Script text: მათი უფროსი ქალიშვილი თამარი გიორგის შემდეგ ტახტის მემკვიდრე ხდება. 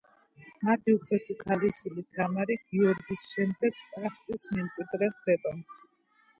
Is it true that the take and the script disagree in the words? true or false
false